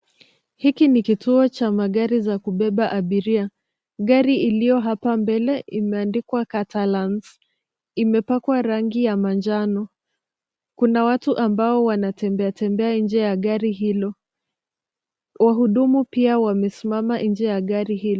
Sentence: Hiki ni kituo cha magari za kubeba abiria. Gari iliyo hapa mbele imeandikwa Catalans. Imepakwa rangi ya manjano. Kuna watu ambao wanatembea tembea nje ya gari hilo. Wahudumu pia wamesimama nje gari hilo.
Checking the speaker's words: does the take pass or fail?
fail